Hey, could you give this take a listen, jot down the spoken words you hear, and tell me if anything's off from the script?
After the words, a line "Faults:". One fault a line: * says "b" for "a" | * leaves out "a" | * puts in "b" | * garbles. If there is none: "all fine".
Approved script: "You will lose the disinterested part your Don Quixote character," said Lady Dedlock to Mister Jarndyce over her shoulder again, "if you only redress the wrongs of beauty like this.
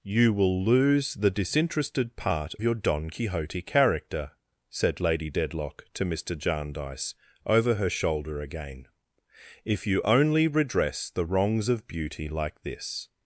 "You will lose the disinterested part your Don Quixote character," said Lady Dedlock to Mister Jarndyce over her shoulder again, "if you only redress the wrongs of beauty like this.
Faults:
all fine